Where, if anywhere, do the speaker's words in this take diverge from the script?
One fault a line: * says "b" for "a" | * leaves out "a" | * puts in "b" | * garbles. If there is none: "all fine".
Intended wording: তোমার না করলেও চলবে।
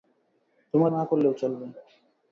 all fine